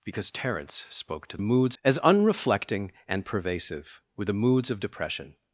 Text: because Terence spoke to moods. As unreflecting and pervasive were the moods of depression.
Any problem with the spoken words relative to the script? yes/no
no